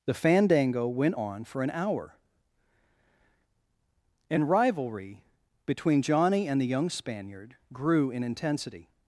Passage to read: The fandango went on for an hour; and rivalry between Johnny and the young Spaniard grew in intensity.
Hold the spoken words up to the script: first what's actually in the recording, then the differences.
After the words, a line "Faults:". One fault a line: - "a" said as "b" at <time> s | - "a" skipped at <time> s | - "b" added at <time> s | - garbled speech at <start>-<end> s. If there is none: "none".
The fandango went on for an hour; and rivalry between Johnny and the young Spaniard grew in intensity.
Faults:
none